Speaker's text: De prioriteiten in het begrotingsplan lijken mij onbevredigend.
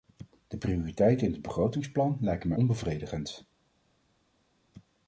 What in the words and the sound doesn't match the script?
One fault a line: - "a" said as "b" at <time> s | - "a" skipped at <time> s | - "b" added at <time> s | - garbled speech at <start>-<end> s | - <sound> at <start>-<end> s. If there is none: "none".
none